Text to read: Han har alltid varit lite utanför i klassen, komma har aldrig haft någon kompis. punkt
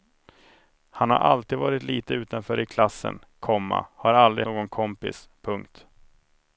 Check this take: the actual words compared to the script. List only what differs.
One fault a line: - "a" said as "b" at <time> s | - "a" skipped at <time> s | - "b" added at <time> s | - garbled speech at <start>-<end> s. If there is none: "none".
- "haft" skipped at 4.5 s